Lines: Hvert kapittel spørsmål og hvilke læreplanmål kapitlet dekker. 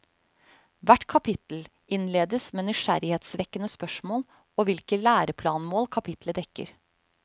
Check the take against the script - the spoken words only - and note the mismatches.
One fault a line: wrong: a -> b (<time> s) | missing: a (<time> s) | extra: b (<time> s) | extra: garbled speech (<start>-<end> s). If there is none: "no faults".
extra: innledes med nysgjerrighetsvekkende (2.0 s)